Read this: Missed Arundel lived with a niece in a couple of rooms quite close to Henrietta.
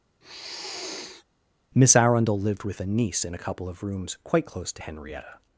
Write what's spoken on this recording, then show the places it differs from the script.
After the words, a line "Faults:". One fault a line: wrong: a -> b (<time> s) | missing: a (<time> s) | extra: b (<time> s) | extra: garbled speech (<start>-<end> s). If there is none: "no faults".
Miss Arundel lived with a niece in a couple of rooms quite close to Henrietta.
Faults:
wrong: Missed -> Miss (1.7 s)